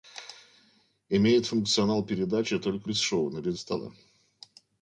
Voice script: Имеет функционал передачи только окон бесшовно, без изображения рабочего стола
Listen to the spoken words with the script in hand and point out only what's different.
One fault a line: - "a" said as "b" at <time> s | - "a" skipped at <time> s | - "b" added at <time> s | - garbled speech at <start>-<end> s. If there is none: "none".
- "окон" skipped at 2.9 s
- "изображения рабочего" skipped at 3.6 s